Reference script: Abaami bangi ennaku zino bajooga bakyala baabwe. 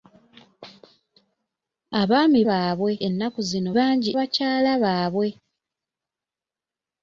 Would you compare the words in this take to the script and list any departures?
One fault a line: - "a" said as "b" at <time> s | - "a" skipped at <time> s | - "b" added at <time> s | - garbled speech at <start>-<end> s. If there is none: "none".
- "bangi" said as "baabwe" at 2.5 s
- "bajooga" said as "bangi" at 3.8 s